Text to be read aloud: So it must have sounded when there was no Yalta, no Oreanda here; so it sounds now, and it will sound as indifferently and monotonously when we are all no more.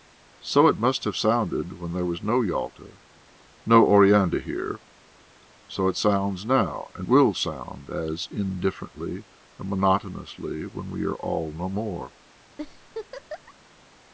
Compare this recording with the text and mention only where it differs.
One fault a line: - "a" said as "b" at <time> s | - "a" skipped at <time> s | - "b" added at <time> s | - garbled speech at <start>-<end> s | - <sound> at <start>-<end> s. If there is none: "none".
- "it" skipped at 7.1 s
- laugh at 12.6-13.5 s